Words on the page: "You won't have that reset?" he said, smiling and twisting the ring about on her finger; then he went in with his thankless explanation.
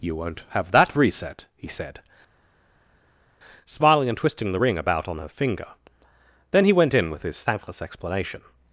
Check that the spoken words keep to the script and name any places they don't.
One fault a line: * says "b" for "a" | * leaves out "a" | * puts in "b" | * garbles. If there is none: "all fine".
all fine